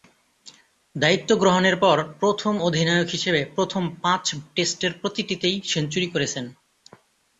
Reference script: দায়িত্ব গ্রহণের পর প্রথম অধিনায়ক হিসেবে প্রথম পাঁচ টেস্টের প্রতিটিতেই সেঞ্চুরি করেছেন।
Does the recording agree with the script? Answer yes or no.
yes